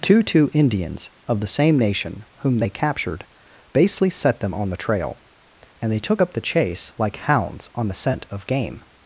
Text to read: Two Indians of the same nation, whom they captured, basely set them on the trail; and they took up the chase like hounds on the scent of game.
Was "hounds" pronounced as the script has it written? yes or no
yes